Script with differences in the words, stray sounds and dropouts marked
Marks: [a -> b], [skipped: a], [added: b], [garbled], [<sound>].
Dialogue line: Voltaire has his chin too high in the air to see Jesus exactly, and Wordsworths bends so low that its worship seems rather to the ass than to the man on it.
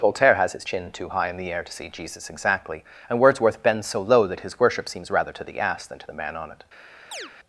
Voltaire has his chin too high in the air to see Jesus exactly, and [Wordsworths -> Wordsworth] bends so low that [its -> his] worship seems rather to the ass than to the man on it. [chirp]